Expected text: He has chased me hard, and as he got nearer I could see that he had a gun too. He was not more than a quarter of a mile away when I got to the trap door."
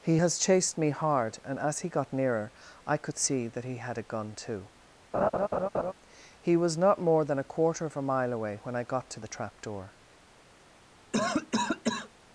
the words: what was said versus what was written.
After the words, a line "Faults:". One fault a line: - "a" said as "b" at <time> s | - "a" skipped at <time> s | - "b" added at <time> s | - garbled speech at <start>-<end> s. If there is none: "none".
He has chased me hard, and as he got nearer I could see that he had a gun too. He was not more than a quarter of a mile away when I got to the trap door."
Faults:
none